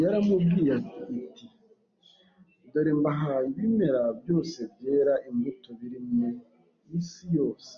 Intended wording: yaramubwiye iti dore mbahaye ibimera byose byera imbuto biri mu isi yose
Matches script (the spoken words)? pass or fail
pass